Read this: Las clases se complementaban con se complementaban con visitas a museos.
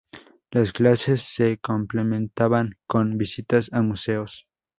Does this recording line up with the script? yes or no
no